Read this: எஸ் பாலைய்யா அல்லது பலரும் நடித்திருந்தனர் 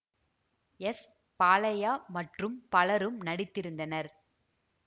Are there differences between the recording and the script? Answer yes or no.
yes